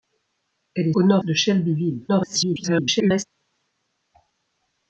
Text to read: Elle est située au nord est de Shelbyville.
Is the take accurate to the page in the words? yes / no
no